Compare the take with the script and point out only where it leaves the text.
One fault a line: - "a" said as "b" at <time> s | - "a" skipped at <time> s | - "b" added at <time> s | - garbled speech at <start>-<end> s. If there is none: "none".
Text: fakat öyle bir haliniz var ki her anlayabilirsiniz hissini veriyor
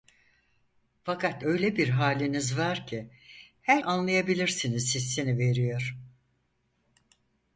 none